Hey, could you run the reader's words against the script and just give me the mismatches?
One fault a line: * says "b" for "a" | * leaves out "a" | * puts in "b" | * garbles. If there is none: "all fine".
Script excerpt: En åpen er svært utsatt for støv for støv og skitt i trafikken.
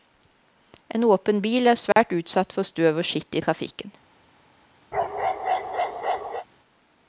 * puts in "bil"
* leaves out "for støv"